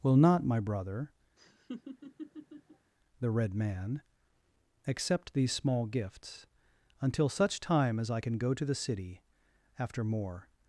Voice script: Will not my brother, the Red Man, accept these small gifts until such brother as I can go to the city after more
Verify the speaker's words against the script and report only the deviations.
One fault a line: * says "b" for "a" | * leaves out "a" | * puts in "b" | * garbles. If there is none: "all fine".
* says "time" for "brother"